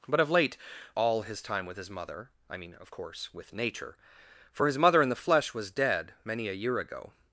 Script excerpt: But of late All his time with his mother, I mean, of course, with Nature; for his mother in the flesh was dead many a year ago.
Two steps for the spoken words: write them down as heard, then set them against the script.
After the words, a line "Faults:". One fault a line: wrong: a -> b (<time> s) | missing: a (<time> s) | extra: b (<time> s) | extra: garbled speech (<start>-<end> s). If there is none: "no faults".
But of late All his time with his mother, I mean, of course, with Nature; for his mother in the flesh was dead many a year ago.
Faults:
no faults